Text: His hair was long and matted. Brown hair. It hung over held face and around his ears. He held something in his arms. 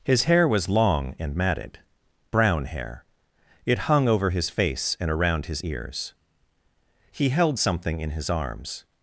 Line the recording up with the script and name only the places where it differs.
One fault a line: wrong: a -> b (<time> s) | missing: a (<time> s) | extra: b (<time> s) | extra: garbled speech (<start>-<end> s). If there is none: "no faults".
wrong: held -> his (4.3 s)